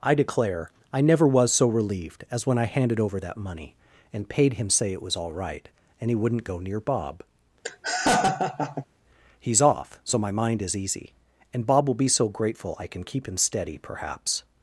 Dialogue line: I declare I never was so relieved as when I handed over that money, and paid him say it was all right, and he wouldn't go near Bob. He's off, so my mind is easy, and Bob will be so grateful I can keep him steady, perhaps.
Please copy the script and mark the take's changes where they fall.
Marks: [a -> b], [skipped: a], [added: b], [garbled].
I declare I never was so relieved as when I handed over that money, and paid him say it was all right, and he wouldn't go near Bob. He's off, so my mind is easy, and Bob will be so grateful I can keep him steady, perhaps.